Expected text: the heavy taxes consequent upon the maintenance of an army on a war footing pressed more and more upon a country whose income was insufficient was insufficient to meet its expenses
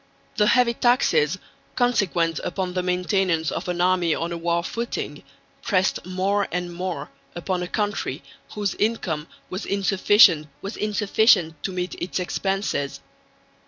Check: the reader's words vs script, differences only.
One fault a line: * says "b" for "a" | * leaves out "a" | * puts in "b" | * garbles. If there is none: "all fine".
all fine